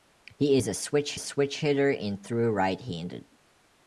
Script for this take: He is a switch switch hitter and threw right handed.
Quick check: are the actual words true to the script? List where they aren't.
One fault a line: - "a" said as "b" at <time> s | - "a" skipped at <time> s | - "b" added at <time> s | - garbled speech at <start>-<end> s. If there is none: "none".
none